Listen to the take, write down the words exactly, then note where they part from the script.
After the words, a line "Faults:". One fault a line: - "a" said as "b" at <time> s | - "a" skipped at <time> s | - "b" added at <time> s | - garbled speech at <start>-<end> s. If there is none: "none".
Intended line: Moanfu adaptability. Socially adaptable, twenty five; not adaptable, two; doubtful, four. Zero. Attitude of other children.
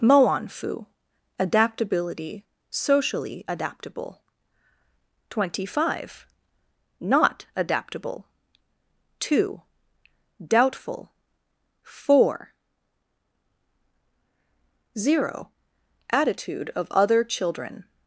Moanfu adaptability. Socially adaptable, twenty five; not adaptable, two; doubtful, four. Zero. Attitude of other children.
Faults:
none